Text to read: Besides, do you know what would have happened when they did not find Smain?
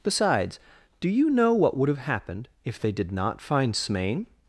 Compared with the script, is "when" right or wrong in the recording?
wrong